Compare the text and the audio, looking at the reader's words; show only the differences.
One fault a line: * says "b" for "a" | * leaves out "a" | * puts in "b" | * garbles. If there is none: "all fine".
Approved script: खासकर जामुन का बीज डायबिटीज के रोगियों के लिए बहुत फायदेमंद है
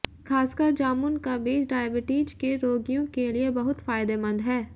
all fine